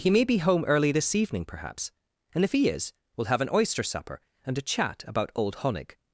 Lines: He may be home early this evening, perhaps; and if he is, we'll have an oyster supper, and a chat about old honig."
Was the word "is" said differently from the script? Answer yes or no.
no